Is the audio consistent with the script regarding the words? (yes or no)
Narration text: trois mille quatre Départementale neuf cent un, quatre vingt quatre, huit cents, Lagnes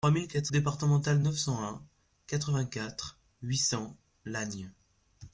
yes